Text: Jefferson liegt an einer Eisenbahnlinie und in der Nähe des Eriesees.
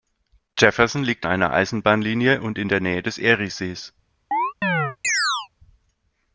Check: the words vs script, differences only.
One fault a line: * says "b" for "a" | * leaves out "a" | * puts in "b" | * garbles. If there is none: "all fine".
* leaves out "an"